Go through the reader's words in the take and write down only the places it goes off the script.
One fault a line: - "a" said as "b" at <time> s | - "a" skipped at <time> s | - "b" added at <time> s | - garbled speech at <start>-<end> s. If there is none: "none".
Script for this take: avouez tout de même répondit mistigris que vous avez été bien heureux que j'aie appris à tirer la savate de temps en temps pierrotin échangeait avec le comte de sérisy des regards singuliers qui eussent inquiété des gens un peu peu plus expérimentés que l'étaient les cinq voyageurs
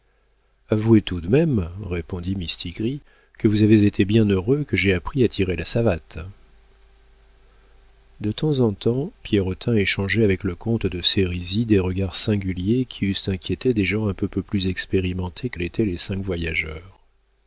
none